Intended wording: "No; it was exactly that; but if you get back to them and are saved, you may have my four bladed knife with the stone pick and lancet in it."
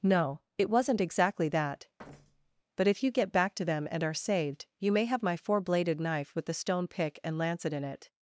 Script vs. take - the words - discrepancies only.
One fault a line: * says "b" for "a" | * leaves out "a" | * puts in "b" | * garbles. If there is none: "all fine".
* says "wasn't" for "was"